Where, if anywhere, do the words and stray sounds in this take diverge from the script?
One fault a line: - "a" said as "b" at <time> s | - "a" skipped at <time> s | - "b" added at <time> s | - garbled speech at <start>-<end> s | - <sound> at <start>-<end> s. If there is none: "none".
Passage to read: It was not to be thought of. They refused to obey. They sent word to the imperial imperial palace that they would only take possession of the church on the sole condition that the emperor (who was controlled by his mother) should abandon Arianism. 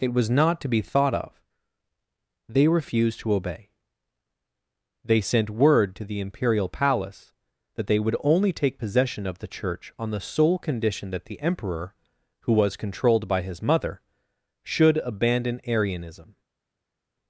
- "imperial" skipped at 6.7 s